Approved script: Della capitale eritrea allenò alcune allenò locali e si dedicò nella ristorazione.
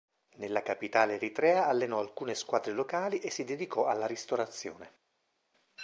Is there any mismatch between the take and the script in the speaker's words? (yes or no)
yes